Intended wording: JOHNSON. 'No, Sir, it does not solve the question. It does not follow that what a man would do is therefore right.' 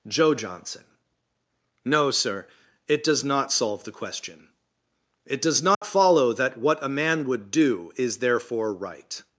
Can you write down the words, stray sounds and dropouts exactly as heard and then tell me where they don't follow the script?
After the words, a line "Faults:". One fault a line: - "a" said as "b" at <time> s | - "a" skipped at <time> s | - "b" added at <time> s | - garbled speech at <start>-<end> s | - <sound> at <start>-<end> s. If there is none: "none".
joe JOHNSON. 'No, Sir, it does not solve the question. It does not follow that what a man would do is therefore right.'
Faults:
- "joe" added at 0.1 s
- dropout at 5.7-5.8 s